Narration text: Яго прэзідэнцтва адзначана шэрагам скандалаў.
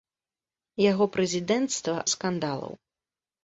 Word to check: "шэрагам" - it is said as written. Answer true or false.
false